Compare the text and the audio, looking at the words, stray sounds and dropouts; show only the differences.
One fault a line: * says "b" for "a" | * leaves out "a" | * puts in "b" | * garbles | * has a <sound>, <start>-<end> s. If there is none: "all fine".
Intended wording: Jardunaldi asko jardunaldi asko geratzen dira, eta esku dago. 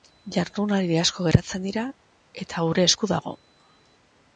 * leaves out "jardunaldi asko"
* puts in "gure"